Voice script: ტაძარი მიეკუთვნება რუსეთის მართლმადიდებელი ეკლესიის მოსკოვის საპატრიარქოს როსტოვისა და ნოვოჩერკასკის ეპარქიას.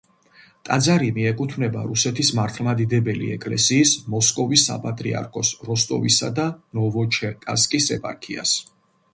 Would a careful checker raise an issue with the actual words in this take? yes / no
no